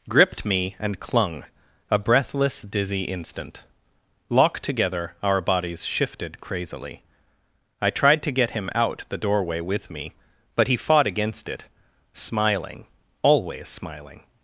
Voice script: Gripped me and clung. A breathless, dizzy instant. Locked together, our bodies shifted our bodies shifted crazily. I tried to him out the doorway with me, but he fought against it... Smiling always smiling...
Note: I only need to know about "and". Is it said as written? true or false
true